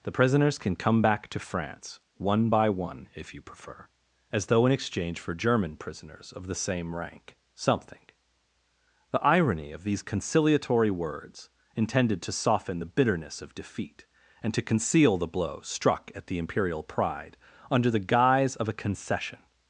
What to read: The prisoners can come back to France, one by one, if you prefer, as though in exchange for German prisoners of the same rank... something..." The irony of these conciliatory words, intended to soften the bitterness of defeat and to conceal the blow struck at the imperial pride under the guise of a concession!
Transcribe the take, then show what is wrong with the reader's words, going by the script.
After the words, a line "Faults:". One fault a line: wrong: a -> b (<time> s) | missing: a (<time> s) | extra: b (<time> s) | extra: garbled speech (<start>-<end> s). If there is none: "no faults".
The prisoners can come back to France, one by one, if you prefer, as though in exchange for German prisoners of the same rank... something..." The irony of these conciliatory words, intended to soften the bitterness of defeat and to conceal the blow struck at the imperial pride under the guise of a concession!
Faults:
no faults